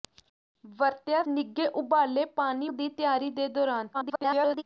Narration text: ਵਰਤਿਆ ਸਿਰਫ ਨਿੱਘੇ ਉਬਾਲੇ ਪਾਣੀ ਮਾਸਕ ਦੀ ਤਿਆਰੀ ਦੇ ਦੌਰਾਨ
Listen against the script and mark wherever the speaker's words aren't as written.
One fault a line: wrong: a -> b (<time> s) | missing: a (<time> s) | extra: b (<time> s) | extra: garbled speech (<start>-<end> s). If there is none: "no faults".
missing: ਸਿਰਫ (1.2 s)
missing: ਮਾਸਕ (2.7 s)
extra: garbled speech (3.9-4.6 s)